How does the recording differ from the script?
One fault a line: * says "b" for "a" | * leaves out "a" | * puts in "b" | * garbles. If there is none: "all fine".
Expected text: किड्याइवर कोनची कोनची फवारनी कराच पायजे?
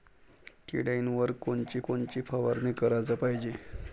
all fine